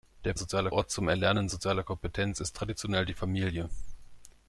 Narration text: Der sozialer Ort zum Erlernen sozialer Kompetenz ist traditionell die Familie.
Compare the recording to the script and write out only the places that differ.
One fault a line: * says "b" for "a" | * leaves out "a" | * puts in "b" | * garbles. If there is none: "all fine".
all fine